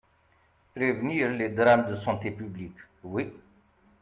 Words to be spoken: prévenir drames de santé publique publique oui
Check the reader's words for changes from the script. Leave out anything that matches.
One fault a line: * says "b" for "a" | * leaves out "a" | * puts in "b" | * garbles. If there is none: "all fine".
* puts in "les"
* leaves out "publique"